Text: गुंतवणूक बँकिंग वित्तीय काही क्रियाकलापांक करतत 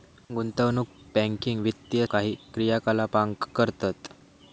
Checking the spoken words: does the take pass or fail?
pass